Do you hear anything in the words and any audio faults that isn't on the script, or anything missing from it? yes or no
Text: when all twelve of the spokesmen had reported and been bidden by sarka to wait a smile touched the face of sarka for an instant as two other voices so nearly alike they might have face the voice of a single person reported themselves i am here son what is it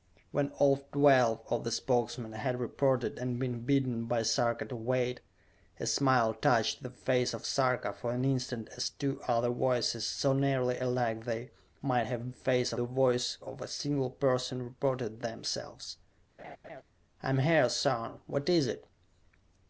yes